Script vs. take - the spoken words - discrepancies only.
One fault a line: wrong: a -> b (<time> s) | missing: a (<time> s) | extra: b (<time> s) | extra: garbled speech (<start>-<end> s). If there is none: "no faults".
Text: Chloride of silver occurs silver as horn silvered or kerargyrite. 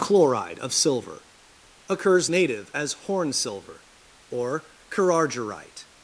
wrong: silver -> native (2.3 s)
wrong: silvered -> silver (3.3 s)